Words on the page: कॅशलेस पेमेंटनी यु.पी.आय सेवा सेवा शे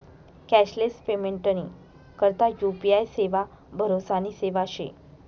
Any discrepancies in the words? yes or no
yes